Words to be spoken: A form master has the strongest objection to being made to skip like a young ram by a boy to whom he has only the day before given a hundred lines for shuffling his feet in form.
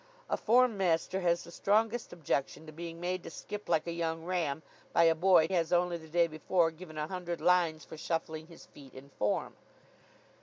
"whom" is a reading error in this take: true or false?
true